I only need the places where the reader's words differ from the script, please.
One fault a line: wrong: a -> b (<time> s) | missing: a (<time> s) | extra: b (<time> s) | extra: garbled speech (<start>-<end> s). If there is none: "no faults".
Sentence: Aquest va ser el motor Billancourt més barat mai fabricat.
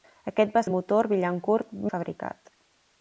missing: ser (0.6 s)
missing: més barat mai (1.7 s)